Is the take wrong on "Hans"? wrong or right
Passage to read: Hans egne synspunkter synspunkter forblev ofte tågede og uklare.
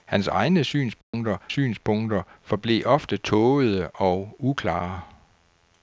right